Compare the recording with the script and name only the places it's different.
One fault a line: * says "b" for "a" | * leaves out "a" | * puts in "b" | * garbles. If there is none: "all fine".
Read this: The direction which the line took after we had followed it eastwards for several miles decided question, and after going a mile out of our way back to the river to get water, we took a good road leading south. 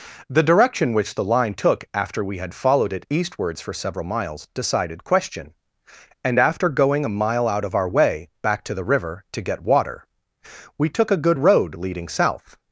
all fine